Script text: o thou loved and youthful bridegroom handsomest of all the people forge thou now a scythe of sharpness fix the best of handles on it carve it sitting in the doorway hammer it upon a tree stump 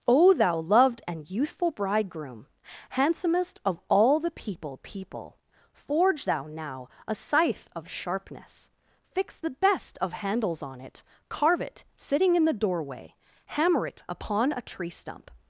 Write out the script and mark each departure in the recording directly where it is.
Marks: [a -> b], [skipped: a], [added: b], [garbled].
o thou loved and youthful bridegroom handsomest of all the people [added: people] forge thou now a scythe of sharpness fix the best of handles on it carve it sitting in the doorway hammer it upon a tree stump